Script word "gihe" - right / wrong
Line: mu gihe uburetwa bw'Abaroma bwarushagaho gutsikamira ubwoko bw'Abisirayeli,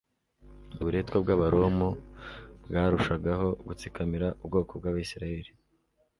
wrong